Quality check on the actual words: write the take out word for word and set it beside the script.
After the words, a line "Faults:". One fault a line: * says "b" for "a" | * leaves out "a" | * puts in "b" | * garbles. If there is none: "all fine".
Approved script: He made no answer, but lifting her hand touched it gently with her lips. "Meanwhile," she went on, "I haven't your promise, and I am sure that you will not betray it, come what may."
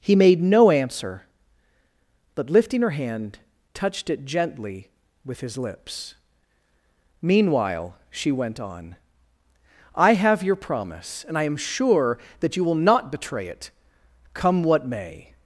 He made no answer, but lifting her hand touched it gently with his lips. "Meanwhile," she went on, "I have your promise, and I am sure that you will not betray it, come what may."
Faults:
* says "his" for "her"
* says "have" for "haven't"